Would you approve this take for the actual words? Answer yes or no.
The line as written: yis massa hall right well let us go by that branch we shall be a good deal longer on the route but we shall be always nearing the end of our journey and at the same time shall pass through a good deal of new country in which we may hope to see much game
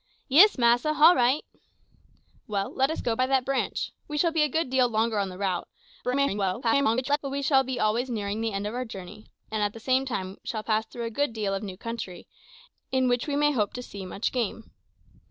no